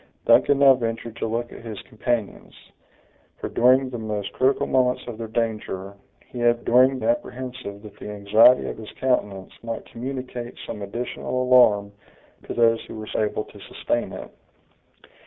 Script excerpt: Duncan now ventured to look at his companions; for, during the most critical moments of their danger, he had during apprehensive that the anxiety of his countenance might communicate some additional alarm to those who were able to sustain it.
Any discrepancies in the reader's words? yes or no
no